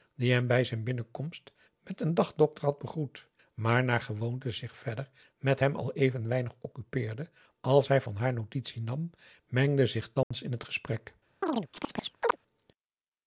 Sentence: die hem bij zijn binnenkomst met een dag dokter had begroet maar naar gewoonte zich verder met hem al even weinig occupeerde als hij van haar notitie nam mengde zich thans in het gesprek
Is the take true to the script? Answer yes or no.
yes